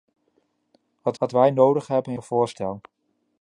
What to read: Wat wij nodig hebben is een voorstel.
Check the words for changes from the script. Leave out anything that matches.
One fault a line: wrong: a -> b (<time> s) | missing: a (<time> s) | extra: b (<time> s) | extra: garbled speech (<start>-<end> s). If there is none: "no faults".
extra: wat (1.2 s)
missing: is (2.1 s)